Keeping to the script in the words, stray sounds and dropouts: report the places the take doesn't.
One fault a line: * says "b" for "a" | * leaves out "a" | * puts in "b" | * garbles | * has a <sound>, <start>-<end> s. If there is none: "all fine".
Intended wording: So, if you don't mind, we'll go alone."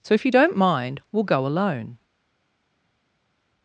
all fine